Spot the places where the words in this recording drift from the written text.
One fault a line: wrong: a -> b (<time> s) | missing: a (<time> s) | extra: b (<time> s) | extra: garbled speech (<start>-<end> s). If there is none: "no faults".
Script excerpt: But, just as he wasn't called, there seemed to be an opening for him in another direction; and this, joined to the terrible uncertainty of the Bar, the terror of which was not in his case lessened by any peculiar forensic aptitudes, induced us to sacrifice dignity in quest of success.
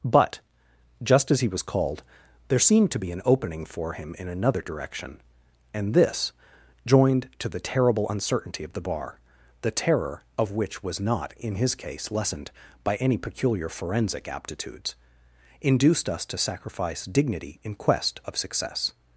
wrong: wasn't -> was (1.5 s)